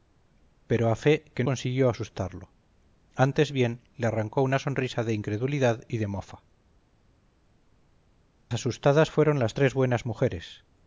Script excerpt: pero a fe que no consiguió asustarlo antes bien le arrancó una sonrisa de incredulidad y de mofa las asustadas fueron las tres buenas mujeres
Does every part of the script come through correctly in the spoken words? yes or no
no